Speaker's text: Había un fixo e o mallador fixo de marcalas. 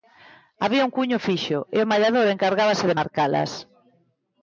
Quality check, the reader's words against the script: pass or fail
fail